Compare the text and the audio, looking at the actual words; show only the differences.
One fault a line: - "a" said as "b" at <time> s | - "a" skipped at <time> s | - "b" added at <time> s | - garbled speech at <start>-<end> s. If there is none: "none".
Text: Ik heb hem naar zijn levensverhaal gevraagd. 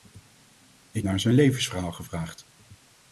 - "heb hem" skipped at 1.1 s